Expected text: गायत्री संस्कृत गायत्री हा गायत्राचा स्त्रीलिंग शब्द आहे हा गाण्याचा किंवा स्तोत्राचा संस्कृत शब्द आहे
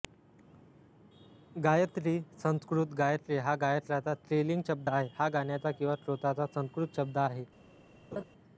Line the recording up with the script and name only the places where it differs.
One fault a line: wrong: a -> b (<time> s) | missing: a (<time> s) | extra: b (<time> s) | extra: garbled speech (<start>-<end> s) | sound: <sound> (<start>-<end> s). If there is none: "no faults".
sound: laugh (8.1-8.2 s)